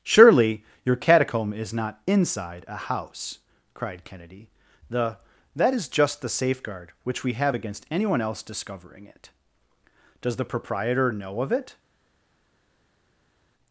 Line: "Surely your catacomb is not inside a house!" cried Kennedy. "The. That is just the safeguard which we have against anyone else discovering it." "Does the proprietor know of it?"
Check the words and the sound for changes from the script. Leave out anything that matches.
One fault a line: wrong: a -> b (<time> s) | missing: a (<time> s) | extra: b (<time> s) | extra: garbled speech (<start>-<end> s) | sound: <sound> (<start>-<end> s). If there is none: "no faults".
no faults